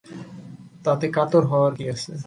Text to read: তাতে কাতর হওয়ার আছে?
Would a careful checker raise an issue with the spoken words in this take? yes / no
yes